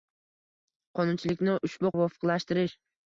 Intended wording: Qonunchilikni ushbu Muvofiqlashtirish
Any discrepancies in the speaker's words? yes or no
no